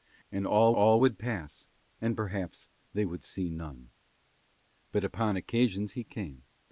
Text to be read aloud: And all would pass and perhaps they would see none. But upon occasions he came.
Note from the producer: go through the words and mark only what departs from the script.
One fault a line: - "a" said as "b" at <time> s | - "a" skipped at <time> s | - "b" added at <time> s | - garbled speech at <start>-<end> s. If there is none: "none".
- "all" added at 0.7 s